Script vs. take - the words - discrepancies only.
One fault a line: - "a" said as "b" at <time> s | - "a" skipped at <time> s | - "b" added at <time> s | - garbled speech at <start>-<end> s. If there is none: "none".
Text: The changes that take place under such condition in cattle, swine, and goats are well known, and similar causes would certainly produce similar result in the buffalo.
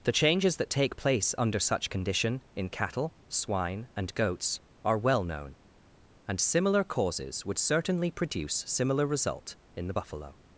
none